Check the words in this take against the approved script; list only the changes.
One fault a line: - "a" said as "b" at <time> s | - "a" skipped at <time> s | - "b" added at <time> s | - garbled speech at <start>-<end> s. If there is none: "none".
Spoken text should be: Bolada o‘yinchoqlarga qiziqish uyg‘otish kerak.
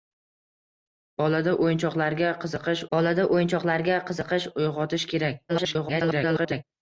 - "bolada o‘yinchoqlarga qiziqish" added at 3.0 s
- garbled speech at 5.5-6.6 s